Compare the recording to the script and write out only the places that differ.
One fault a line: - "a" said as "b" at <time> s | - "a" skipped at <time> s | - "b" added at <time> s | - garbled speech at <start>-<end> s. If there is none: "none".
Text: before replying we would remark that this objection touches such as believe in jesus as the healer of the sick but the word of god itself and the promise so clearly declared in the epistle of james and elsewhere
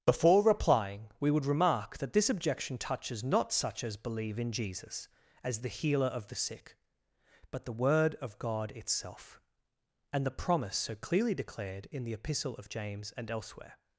- "not" added at 3.2 s